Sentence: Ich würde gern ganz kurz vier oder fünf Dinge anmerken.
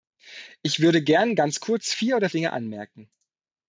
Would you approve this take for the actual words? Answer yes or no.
no